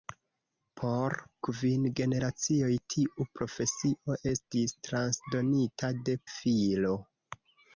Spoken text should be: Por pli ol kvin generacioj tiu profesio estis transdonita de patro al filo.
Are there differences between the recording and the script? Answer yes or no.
yes